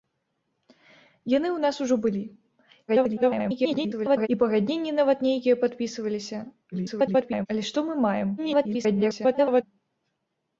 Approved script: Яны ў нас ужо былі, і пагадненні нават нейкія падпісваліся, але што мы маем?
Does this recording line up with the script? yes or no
no